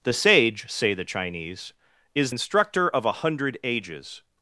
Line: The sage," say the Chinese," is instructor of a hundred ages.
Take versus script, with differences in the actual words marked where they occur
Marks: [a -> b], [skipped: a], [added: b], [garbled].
The sage," say the Chinese," is instructor of a hundred ages.